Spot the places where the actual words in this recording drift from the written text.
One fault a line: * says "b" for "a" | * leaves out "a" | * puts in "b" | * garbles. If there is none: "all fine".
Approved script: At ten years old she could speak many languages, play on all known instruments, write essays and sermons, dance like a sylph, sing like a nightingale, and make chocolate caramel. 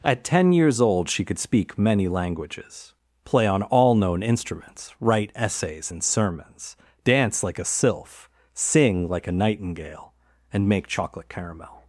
all fine